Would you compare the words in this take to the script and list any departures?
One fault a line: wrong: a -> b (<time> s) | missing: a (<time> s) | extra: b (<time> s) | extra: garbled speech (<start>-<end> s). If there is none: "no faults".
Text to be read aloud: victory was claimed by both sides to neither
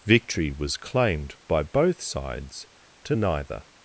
no faults